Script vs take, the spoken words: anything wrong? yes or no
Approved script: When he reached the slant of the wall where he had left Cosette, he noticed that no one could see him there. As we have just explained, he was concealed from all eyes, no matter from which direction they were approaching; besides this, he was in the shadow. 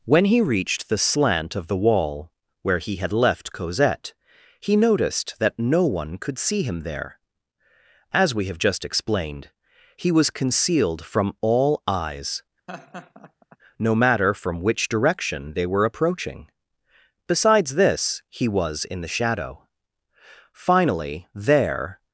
yes